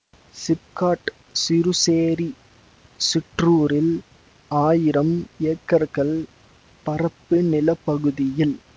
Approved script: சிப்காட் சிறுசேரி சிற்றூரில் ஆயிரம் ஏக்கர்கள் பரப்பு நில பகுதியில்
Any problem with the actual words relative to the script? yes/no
no